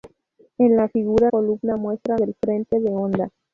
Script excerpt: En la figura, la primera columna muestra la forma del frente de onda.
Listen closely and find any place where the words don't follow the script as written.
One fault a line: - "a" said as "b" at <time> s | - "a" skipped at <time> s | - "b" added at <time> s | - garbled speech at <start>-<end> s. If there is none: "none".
- "la primera" skipped at 1.3 s
- "la forma" skipped at 2.2 s